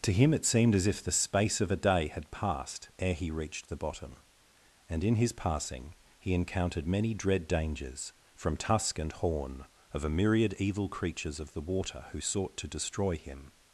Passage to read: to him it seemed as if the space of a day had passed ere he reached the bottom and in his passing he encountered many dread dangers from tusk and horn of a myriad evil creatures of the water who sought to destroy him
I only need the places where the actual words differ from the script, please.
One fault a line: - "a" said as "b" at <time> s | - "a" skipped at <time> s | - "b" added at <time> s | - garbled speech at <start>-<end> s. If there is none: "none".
none